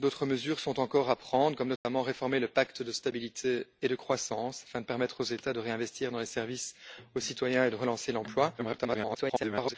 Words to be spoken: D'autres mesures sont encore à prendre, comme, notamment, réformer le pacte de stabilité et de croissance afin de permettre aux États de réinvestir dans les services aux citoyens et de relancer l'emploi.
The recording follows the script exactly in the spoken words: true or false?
false